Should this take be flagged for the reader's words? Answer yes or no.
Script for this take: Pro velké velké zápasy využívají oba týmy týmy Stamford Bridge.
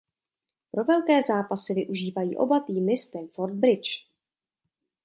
yes